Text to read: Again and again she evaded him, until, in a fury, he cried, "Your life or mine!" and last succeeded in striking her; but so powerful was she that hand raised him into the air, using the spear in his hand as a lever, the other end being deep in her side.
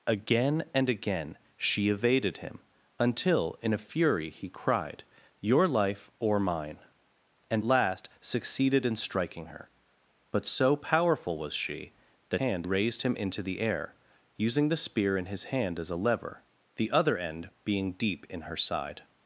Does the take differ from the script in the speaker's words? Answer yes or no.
no